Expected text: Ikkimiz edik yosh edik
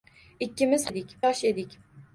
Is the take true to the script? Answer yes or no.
yes